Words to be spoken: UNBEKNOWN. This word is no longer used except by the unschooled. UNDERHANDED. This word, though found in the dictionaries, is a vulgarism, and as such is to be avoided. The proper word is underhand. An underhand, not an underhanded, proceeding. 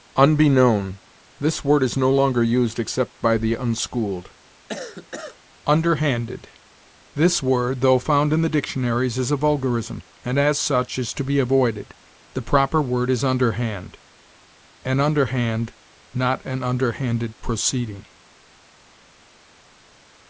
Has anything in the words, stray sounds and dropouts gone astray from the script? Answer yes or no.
yes